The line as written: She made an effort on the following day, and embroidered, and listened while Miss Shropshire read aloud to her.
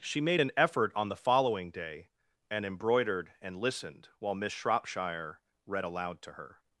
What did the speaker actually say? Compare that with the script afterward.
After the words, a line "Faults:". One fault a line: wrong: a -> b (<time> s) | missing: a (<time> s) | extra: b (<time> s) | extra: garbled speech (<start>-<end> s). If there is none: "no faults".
She made an effort on the following day, and embroidered, and listened while Miss Shropshire read aloud to her.
Faults:
no faults